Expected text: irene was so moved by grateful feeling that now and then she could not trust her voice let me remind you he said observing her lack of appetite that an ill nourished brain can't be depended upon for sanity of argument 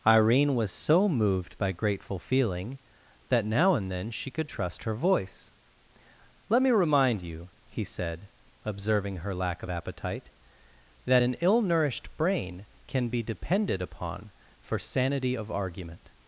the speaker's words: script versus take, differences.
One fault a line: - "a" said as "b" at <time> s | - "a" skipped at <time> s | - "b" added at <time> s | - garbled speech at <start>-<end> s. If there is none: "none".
- "not" skipped at 4.5 s
- "can't" said as "can" at 12.9 s